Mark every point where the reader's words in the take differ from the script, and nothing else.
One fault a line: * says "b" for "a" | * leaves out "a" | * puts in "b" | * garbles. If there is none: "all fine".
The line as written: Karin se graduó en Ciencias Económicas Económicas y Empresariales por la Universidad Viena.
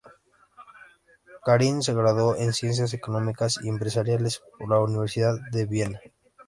* leaves out "Económicas"
* puts in "de"